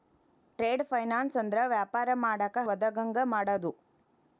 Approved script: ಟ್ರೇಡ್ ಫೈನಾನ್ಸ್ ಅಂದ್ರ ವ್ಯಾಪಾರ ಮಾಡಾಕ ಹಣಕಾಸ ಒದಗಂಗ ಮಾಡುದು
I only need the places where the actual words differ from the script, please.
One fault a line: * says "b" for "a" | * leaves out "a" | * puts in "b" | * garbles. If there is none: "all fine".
* leaves out "ಹಣಕಾಸ"